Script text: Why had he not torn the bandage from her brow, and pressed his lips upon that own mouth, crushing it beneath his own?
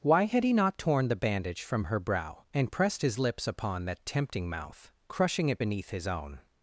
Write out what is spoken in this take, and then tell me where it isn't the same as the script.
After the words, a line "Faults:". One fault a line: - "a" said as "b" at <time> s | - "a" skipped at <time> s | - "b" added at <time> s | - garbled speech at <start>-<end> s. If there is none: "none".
Why had he not torn the bandage from her brow, and pressed his lips upon that tempting mouth, crushing it beneath his own?
Faults:
- "own" said as "tempting" at 4.0 s